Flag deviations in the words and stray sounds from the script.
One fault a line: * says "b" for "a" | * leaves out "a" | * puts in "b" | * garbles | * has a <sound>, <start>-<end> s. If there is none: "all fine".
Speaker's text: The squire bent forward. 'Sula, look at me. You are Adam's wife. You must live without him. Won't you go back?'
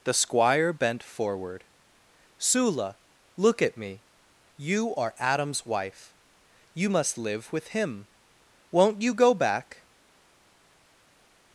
* says "with" for "without"